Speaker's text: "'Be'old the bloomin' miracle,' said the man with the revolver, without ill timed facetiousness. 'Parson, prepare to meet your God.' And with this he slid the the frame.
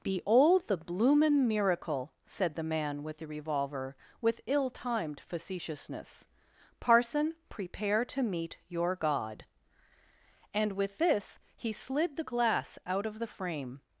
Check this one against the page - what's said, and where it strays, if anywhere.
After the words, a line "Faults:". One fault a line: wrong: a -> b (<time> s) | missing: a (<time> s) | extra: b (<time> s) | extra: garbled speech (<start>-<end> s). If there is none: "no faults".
"'Be'old the bloomin' miracle,' said the man with the revolver, with ill timed facetiousness. 'Parson, prepare to meet your God.' And with this he slid the glass out of the frame.
Faults:
wrong: without -> with (4.2 s)
extra: glass out of (12.2 s)